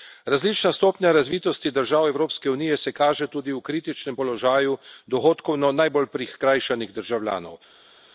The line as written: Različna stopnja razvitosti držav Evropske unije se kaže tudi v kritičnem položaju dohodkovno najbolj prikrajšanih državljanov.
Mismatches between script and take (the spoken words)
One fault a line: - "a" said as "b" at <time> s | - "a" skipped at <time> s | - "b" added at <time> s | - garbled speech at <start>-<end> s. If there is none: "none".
none